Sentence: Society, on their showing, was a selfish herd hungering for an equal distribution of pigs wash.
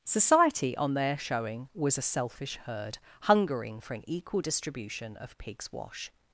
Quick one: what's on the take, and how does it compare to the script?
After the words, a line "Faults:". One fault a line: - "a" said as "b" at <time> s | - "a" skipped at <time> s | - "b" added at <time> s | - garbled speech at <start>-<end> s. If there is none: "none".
Society, on their showing, was a selfish herd hungering for an equal distribution of pigs wash.
Faults:
none